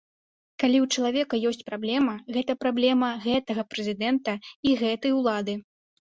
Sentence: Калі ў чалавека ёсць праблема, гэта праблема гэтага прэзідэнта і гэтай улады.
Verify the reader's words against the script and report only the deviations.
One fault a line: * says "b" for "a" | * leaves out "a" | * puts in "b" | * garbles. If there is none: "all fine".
all fine